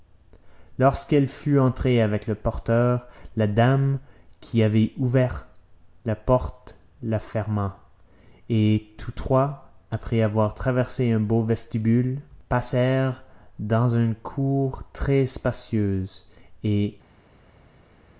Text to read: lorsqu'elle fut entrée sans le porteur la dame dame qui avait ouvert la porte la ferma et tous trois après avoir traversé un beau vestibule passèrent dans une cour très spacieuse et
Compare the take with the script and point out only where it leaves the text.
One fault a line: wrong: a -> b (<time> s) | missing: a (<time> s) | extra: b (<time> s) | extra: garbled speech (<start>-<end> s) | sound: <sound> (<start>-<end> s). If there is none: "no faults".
wrong: sans -> avec (2.0 s)
missing: dame (4.0 s)